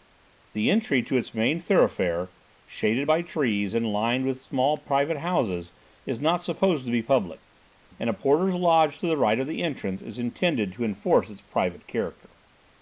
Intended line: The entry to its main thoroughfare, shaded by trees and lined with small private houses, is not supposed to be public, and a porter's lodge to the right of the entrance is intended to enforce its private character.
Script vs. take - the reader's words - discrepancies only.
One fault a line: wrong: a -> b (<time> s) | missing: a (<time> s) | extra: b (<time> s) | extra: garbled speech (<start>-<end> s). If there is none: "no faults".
no faults